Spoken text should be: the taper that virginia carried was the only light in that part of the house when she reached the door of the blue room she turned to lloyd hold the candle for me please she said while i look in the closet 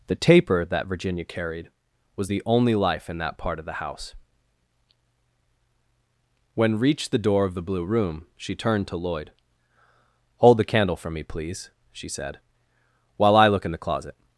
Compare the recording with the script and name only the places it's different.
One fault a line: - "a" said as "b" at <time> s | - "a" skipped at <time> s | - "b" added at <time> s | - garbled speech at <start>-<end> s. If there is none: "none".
- "light" said as "life" at 2.7 s
- "she" skipped at 6.8 s